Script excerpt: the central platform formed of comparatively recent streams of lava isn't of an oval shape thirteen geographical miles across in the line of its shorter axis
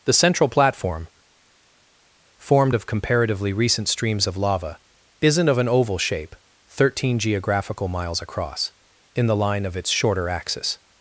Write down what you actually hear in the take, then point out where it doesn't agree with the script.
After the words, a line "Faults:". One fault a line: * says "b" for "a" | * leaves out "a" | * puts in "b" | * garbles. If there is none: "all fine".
the central platform formed of comparatively recent streams of lava isn't of an oval shape thirteen geographical miles across in the line of its shorter axis
Faults:
all fine